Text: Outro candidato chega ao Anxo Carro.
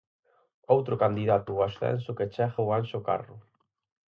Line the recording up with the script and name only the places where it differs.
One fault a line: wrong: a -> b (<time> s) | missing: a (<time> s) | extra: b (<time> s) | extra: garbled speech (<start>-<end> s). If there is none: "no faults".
extra: ao ascenso que (1.5 s)